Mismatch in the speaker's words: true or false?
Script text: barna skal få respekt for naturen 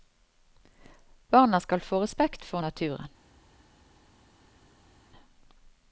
false